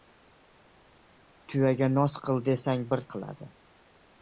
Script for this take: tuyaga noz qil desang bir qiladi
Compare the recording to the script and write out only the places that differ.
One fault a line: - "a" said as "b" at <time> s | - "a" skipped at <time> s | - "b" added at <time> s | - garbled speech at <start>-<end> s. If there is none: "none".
none